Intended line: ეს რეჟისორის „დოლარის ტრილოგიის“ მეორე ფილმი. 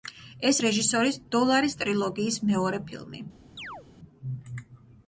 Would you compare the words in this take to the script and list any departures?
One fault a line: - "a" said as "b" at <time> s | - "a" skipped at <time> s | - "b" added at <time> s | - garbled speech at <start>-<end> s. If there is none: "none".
none